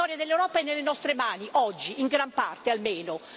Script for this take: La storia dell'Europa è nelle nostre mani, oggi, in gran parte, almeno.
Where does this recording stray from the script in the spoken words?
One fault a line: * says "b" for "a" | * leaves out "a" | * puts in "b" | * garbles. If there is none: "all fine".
all fine